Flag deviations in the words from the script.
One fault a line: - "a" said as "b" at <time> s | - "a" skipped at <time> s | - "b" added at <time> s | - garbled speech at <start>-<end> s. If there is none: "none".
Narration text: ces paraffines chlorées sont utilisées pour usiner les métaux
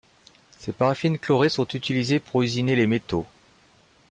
none